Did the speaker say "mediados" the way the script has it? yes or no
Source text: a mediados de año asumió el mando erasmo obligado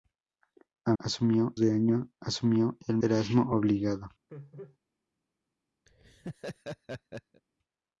no